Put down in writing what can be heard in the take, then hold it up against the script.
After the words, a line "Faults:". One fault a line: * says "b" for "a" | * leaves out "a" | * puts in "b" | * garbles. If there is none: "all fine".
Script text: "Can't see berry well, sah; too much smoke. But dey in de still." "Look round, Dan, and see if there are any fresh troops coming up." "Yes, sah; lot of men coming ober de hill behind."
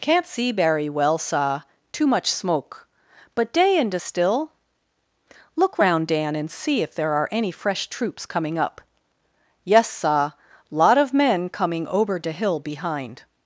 "Can't see berry well, sah; too much smoke. But dey in de still." "Look round, Dan, and see if there are any fresh troops coming up." "Yes, sah; lot of men coming ober de hill behind."
Faults:
all fine